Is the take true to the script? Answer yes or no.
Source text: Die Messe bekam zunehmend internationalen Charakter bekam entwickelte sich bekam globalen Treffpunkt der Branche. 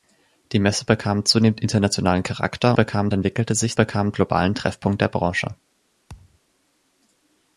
yes